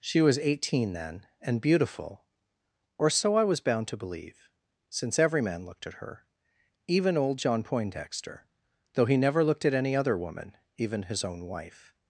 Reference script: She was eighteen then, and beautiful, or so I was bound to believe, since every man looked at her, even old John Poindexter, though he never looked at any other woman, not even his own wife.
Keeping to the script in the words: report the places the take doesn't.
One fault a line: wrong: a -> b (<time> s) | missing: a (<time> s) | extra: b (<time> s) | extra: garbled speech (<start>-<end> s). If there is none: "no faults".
missing: not (10.6 s)